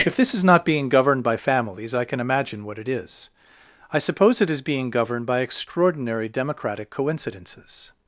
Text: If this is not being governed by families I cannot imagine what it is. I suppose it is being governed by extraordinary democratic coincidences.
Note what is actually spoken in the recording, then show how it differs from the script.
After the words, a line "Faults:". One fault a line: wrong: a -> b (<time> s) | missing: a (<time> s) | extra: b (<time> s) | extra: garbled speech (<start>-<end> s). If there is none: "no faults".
If this is not being governed by families I can imagine what it is. I suppose it is being governed by extraordinary democratic coincidences.
Faults:
wrong: cannot -> can (2.0 s)